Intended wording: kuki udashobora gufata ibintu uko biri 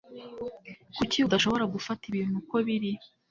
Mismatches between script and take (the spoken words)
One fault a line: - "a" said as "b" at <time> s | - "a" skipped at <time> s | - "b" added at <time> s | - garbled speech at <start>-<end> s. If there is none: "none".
none